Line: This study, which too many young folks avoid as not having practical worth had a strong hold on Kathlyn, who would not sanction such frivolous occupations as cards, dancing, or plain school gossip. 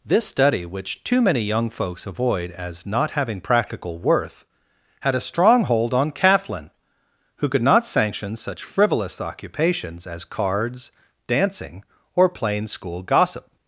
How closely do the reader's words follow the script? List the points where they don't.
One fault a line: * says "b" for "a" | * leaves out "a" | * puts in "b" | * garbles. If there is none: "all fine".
* says "could" for "would"